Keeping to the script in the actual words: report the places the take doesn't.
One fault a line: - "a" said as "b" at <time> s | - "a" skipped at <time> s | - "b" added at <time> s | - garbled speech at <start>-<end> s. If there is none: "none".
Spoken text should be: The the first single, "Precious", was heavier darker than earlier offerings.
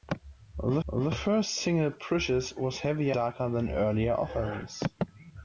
none